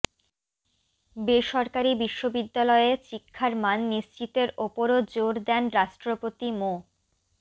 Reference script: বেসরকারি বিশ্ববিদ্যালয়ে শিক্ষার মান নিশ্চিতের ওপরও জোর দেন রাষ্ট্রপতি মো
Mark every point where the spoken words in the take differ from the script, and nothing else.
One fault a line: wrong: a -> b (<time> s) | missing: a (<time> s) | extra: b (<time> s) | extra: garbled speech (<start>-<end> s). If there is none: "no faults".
no faults